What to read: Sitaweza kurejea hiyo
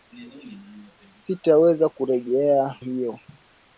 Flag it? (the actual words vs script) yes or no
no